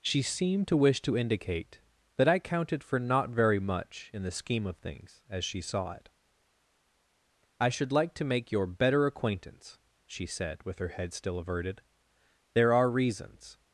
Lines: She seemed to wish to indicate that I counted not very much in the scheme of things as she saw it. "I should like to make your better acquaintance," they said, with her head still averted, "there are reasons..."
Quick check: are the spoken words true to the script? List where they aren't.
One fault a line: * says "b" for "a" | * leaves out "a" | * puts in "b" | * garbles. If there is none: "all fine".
* puts in "for"
* says "she" for "they"